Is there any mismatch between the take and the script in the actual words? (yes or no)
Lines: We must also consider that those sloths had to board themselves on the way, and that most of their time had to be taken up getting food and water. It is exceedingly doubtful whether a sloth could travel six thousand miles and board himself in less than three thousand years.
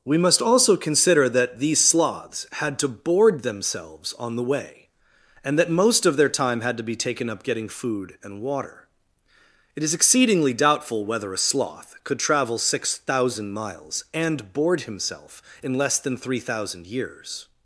yes